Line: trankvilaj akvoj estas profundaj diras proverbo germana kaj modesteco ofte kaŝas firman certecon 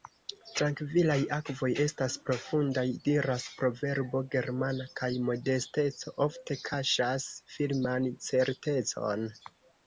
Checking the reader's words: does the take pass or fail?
pass